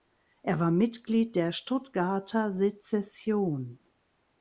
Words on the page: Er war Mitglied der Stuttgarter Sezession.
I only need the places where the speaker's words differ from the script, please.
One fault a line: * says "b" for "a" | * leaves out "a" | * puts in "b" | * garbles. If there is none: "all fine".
all fine